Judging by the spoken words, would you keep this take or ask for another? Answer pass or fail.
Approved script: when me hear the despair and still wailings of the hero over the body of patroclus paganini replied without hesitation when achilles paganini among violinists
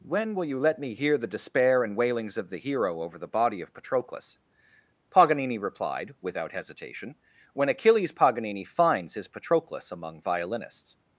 fail